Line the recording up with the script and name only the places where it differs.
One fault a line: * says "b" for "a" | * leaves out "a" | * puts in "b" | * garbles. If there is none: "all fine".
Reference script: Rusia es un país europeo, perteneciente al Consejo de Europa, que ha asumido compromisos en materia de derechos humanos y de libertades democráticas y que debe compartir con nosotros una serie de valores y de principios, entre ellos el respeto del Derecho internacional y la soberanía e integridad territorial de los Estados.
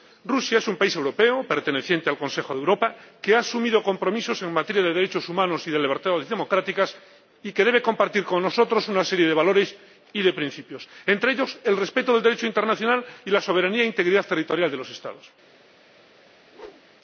all fine